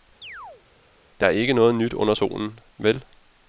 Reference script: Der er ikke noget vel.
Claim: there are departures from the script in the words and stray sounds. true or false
true